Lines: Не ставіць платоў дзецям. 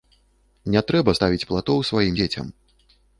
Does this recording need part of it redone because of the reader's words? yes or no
yes